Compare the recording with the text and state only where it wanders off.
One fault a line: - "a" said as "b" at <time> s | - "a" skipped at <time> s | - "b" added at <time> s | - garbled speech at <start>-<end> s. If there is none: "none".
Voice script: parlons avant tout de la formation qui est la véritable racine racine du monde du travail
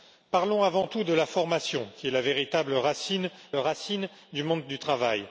none